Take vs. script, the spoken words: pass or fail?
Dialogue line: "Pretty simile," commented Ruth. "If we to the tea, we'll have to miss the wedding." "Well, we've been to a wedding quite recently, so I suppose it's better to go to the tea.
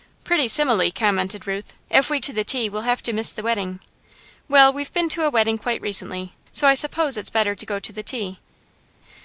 pass